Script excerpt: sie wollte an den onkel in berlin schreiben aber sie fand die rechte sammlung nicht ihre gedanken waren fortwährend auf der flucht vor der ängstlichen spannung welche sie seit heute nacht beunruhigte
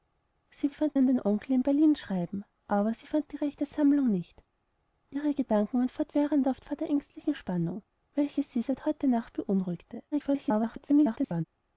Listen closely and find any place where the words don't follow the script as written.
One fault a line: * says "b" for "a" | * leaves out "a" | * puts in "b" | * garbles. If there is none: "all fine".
* says "fand" for "wollte"
* leaves out "der flucht"
* garbles